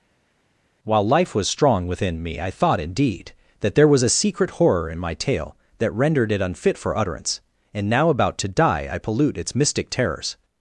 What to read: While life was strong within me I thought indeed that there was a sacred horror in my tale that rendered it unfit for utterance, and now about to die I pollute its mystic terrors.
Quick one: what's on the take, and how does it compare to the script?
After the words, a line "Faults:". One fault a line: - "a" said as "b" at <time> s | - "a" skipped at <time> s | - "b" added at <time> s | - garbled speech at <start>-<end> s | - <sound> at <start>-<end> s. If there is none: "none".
While life was strong within me I thought indeed that there was a secret horror in my tale that rendered it unfit for utterance, and now about to die I pollute its mystic terrors.
Faults:
- "sacred" said as "secret" at 4.1 s